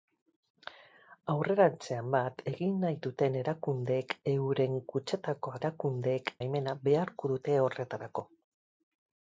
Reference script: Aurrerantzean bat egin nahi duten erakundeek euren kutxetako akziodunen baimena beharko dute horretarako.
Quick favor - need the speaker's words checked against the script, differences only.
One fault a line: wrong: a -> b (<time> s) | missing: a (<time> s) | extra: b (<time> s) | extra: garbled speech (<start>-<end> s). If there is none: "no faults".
wrong: akziodunen -> erakundeek (5.6 s)